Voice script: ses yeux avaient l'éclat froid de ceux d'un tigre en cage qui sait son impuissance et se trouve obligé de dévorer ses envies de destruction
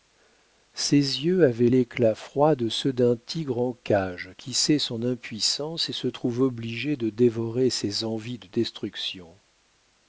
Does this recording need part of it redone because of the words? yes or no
no